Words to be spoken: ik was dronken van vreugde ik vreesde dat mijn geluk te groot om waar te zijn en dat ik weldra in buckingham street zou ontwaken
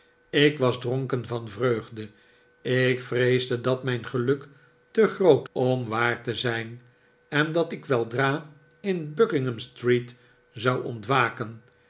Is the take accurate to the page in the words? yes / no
yes